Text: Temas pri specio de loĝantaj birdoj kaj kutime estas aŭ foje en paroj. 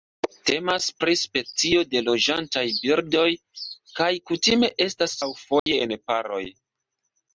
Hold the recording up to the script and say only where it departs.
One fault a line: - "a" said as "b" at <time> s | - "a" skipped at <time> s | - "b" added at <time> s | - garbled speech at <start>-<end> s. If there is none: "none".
none